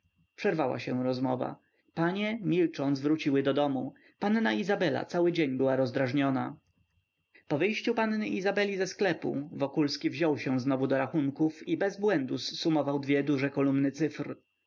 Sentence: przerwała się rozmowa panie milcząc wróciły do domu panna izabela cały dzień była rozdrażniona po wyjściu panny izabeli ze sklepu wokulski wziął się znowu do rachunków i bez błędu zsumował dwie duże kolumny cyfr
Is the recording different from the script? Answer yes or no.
no